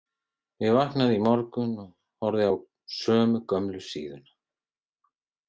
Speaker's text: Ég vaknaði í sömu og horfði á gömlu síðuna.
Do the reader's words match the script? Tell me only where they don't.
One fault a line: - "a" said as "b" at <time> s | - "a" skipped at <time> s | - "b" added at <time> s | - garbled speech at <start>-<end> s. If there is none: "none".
- "sömu" said as "morgun" at 1.2 s
- "sömu" added at 3.0 s